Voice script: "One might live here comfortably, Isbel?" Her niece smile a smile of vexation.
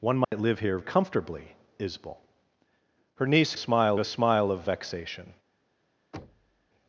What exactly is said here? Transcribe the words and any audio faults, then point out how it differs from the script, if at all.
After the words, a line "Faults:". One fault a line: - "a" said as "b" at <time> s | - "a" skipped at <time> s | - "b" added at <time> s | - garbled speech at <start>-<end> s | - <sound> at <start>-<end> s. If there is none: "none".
"One might live here comfortably, Isbel?" Her niece smile a smile of vexation.
Faults:
- dropout at 0.2-0.3 s
- thud at 6.1-6.7 s